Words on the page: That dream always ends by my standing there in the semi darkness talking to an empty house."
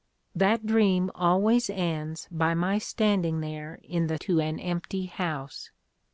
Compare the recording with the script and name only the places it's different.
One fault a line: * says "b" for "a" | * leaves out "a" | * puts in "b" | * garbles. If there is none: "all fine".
* leaves out "semi darkness talking"